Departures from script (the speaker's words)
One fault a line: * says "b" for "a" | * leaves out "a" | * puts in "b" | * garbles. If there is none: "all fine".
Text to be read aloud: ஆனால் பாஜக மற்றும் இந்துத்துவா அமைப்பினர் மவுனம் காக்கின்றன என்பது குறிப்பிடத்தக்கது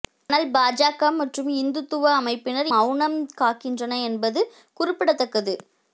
all fine